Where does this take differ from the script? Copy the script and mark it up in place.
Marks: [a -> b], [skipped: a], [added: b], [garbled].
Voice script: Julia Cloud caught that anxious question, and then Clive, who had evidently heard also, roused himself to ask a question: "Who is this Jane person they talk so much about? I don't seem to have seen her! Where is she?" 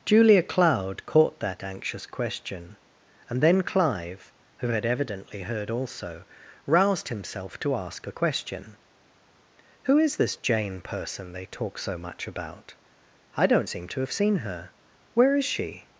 Julia Cloud caught that anxious question, and then Clive, who had evidently heard also, roused himself to ask a question: "Who is this Jane person they talk so much about? I don't seem to have seen her! Where is she?"